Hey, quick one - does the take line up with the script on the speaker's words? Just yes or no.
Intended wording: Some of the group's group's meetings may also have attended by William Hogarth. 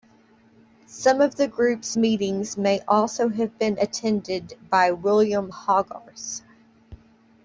no